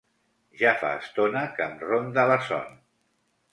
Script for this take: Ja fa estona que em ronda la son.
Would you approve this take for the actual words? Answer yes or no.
yes